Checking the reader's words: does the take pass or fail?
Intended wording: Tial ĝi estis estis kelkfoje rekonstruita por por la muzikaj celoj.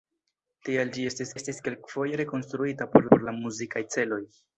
pass